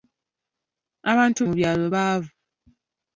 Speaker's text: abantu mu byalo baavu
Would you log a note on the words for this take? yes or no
no